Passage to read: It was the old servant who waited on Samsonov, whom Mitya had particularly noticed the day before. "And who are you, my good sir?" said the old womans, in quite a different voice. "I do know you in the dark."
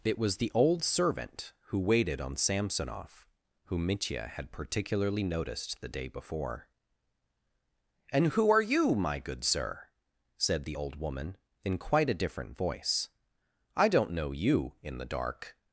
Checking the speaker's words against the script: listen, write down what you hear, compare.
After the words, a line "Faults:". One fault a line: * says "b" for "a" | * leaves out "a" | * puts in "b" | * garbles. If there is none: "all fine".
It was the old servant who waited on Samsonov, whom Mitya had particularly noticed the day before. "And who are you, my good sir?" said the old woman, in quite a different voice. "I don't know you in the dark."
Faults:
* says "woman" for "womans"
* says "don't" for "do"